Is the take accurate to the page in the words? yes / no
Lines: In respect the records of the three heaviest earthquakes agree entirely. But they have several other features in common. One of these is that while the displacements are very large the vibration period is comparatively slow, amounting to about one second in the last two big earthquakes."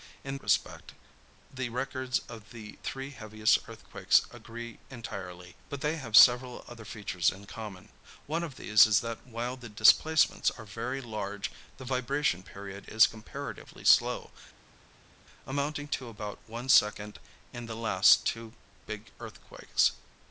yes